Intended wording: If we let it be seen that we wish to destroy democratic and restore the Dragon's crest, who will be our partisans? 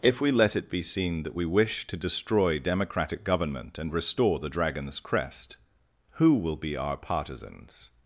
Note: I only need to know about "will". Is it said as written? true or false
true